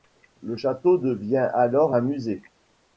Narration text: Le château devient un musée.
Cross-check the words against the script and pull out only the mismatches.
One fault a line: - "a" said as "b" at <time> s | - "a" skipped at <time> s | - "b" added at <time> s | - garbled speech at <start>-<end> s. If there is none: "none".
- "alors" added at 1.5 s